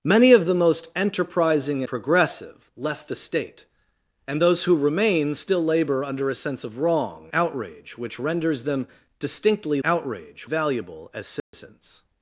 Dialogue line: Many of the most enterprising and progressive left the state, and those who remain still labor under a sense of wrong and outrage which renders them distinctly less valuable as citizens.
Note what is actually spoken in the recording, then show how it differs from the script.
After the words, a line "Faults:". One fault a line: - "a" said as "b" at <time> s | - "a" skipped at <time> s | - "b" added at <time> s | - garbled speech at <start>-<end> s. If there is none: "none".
Many of the most enterprising progressive left the state, and those who remain still labor under a sense of wrong outrage which renders them distinctly outrage valuable as citizens.
Faults:
- "and" skipped at 1.8 s
- "and" skipped at 7.3 s
- "less" said as "outrage" at 9.8 s